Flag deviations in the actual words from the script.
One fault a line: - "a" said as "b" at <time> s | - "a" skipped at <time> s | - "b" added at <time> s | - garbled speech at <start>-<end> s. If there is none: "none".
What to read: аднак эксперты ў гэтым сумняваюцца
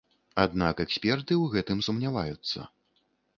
none